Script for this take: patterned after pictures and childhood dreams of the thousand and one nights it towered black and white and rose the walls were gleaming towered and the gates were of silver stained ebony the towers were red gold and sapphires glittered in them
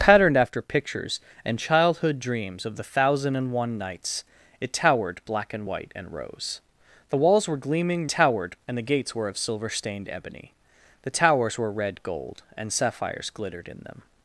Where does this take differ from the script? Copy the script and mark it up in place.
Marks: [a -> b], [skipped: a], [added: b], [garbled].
patterned after pictures and childhood dreams of the thousand and one nights it towered black and white and rose the walls were gleaming towered and the gates were of silver stained ebony the towers were red gold and sapphires glittered in them